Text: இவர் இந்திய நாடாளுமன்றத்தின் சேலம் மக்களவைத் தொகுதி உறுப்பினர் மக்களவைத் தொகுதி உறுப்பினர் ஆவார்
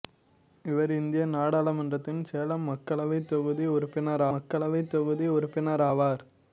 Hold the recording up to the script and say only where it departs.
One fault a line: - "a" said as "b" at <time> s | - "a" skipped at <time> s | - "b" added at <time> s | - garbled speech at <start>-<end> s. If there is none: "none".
none